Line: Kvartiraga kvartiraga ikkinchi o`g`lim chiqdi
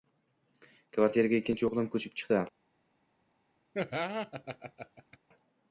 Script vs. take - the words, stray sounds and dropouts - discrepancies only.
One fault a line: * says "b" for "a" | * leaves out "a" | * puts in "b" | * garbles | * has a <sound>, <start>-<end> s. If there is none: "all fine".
* leaves out "kvartiraga"
* puts in "ko`chib"
* has a laugh, 3.7-5.2 s